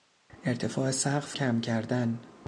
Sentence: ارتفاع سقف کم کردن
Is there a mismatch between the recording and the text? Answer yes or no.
no